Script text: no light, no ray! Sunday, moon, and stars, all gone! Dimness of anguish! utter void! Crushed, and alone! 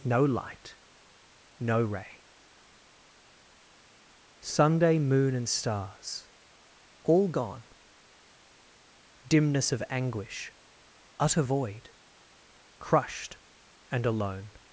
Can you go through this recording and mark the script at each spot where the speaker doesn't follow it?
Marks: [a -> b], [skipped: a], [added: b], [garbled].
no light, no ray! Sunday, moon, and stars, all gone! Dimness of anguish! utter void! Crushed, and alone!